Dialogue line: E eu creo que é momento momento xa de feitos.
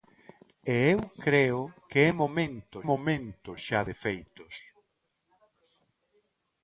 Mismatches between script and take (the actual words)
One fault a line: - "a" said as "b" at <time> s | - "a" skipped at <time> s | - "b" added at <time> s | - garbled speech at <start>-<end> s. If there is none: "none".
none